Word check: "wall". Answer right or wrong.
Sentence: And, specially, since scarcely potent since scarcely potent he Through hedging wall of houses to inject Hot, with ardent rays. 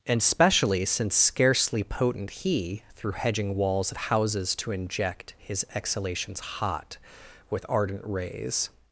wrong